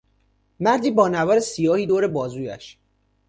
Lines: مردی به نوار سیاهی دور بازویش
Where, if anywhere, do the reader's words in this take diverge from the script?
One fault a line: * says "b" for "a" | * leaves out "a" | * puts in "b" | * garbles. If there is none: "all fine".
* says "با" for "به"